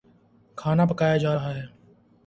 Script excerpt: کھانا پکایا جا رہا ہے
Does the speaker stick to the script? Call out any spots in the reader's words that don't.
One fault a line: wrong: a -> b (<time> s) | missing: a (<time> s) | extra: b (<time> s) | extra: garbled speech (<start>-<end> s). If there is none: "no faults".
no faults